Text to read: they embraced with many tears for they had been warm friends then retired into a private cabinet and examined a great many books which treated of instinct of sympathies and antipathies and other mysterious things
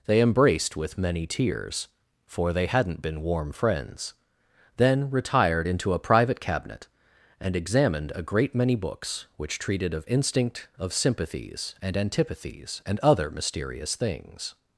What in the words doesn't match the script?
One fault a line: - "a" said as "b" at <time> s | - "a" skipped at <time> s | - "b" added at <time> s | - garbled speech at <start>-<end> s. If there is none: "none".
- "had" said as "hadn't" at 2.6 s